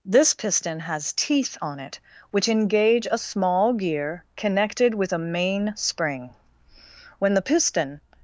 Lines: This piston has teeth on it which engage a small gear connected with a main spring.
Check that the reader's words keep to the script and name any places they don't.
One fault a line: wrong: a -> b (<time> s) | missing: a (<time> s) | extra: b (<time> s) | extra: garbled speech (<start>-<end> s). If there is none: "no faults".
extra: When the piston (7.2 s)